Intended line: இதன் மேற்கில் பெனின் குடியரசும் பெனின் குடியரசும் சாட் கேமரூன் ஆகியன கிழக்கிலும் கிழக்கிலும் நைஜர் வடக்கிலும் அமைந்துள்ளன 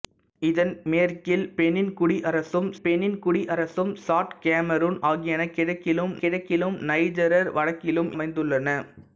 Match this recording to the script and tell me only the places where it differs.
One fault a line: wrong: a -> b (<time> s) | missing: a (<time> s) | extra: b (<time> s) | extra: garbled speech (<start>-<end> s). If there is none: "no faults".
no faults